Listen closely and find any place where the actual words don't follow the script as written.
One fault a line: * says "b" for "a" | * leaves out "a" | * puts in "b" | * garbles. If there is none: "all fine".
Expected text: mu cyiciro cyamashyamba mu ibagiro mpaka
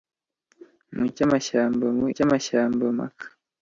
* leaves out "cyiciro"
* says "cyamashyamba" for "ibagiro"